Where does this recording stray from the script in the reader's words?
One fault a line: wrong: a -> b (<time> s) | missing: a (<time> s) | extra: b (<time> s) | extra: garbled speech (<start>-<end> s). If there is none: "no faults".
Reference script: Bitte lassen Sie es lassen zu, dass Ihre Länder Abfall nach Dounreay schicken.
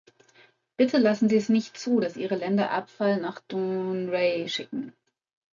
wrong: lassen -> nicht (1.5 s)